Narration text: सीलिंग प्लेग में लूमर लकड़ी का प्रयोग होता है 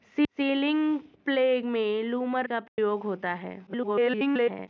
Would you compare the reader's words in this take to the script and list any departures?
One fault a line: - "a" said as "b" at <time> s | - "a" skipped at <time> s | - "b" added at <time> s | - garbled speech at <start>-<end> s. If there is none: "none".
- "लकड़ी" skipped at 2.5 s
- garbled speech at 3.7-4.7 s